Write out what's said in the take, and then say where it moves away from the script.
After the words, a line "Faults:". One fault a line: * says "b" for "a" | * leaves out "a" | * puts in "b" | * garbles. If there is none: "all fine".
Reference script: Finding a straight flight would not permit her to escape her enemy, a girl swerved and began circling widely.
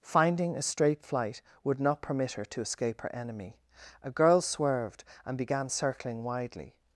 Finding a straight flight would not permit her to escape her enemy, a girl swerved and began circling widely.
Faults:
all fine